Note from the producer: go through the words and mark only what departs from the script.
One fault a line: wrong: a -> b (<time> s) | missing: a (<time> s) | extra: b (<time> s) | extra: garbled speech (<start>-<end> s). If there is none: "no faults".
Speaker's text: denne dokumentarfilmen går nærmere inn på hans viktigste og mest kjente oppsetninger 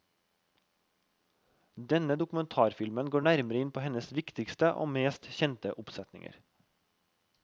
wrong: hans -> hennes (3.9 s)